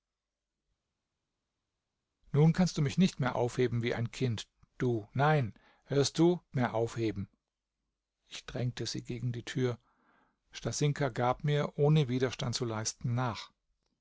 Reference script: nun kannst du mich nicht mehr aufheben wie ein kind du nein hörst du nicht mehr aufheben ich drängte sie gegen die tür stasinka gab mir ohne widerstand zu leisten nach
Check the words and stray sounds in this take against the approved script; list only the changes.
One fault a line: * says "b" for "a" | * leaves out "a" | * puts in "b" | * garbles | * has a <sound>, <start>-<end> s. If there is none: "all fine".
* leaves out "nicht"